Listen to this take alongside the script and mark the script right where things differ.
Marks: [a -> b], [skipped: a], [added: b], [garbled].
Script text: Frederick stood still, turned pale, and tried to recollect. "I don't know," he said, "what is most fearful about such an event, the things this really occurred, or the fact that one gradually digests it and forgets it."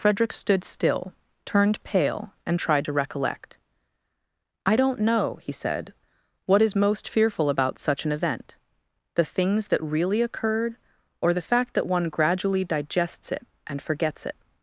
Frederick stood still, turned pale, and tried to recollect. "I don't know," he said, "what is most fearful about such an event, the things [this -> that] really occurred, or the fact that one gradually digests it and forgets it."